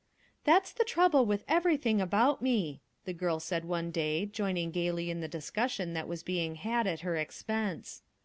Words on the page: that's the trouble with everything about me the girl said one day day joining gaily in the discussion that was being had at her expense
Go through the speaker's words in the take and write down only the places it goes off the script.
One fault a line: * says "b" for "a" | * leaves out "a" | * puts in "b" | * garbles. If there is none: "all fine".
* leaves out "day"